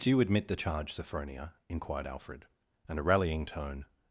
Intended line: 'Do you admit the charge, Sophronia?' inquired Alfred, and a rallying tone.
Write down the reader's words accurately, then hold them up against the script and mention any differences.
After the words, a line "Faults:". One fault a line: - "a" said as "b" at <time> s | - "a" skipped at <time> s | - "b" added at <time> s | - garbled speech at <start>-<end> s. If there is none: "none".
'Do you admit the charge, Sophronia?' inquired Alfred, and a rallying tone.
Faults:
none